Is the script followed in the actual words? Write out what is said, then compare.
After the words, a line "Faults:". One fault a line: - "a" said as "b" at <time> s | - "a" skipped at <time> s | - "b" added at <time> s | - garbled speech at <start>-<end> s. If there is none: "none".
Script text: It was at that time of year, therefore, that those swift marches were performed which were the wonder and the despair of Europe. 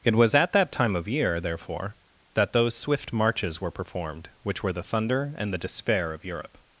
It was at that time of year, therefore, that those swift marches were performed which were the thunder and the despair of Europe.
Faults:
- "wonder" said as "thunder" at 4.8 s